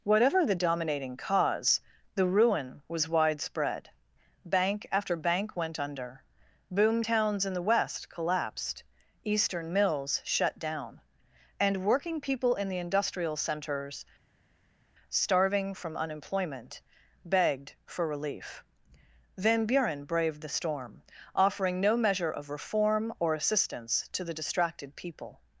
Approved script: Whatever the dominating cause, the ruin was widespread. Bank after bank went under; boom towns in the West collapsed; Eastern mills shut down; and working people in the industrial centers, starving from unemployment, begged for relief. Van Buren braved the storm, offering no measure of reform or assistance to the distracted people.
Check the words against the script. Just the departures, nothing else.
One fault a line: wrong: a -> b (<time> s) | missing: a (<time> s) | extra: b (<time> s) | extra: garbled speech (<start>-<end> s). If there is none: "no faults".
no faults